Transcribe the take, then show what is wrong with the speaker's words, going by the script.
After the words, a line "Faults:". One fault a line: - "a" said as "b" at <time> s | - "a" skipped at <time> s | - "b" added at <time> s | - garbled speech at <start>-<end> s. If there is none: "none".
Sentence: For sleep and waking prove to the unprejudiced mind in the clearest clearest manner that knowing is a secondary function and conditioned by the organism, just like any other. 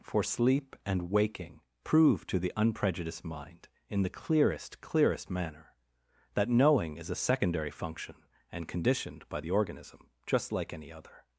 For sleep and waking prove to the unprejudiced mind in the clearest clearest manner that knowing is a secondary function and conditioned by the organism, just like any other.
Faults:
none